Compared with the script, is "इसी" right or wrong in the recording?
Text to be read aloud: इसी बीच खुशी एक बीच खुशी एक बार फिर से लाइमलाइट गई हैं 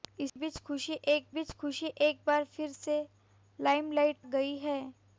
right